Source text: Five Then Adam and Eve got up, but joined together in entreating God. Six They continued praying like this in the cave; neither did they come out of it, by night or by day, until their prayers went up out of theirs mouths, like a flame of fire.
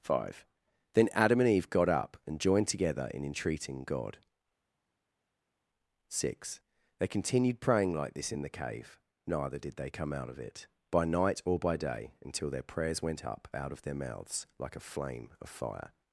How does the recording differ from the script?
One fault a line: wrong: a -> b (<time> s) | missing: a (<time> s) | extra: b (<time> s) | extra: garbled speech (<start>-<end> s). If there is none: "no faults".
wrong: but -> and (2.2 s)
wrong: theirs -> their (13.8 s)